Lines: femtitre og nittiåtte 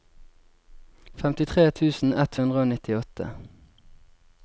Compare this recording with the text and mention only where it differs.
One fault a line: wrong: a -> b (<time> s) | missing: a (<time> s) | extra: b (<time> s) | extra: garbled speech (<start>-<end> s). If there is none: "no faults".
extra: tusen ett hundre (1.8 s)